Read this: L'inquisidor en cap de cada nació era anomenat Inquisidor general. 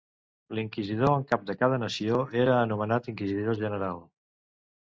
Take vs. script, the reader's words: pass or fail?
pass